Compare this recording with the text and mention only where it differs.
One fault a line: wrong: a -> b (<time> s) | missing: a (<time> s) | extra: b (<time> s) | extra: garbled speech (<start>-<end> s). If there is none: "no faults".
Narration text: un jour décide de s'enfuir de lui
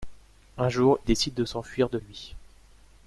no faults